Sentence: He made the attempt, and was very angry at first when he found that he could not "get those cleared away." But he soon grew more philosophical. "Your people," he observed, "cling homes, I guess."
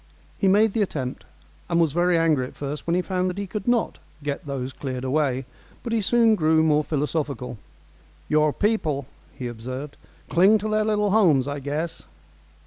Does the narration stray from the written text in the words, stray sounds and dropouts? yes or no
yes